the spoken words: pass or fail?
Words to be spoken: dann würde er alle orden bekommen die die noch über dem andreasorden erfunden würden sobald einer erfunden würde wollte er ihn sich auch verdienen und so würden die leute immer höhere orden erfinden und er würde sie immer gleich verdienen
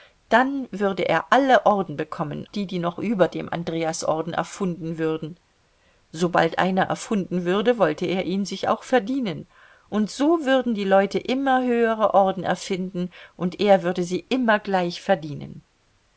pass